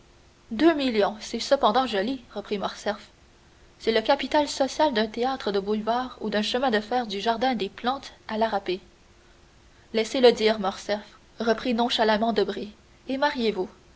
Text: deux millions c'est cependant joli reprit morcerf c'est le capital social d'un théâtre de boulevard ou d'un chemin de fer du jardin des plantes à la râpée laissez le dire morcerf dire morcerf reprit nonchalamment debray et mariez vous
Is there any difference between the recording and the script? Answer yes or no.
yes